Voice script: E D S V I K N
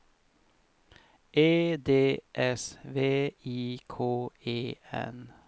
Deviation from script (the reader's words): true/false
true